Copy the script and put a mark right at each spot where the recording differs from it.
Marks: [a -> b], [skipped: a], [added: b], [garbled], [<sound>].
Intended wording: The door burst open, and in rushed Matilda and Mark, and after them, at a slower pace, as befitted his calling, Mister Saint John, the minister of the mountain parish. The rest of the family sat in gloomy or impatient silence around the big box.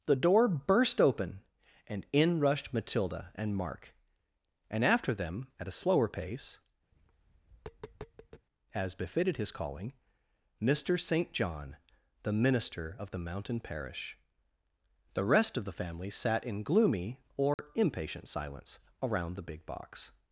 The door burst open, and in rushed Matilda and Mark, and after them, at a slower pace, [tap] as befitted his calling, Mister Saint John, the minister of the mountain parish. The rest of the family sat in gloomy or [dropout] impatient silence around the big box.